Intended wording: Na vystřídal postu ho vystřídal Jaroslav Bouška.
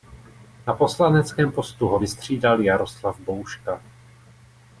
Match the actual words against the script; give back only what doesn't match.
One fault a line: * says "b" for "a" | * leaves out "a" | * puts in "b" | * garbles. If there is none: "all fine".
* says "poslaneckém" for "vystřídal"